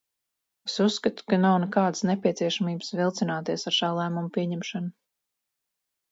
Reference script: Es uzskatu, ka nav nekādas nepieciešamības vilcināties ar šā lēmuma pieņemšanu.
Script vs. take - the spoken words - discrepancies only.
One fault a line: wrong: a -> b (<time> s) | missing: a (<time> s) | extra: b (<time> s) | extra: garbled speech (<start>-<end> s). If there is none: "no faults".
no faults